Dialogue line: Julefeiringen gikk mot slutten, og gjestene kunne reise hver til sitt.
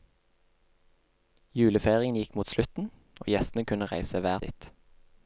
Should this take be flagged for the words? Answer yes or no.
yes